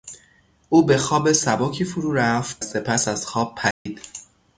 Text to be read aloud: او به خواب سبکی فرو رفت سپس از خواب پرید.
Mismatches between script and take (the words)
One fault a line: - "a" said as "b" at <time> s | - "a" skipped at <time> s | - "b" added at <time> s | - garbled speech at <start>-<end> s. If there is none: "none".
none